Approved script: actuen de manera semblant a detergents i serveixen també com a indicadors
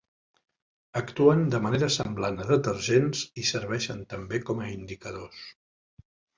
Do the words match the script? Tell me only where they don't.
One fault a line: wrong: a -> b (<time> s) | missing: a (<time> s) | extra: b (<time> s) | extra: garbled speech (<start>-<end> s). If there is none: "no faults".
no faults